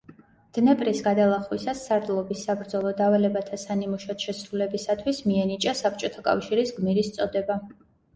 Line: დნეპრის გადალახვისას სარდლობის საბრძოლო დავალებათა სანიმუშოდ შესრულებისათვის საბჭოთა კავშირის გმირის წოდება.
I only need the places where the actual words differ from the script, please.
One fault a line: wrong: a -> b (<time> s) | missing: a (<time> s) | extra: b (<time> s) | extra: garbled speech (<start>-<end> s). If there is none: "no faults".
extra: მიენიჭა (5.3 s)